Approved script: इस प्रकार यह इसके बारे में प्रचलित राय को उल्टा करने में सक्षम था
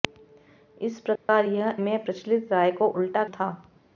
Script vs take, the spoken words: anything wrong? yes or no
yes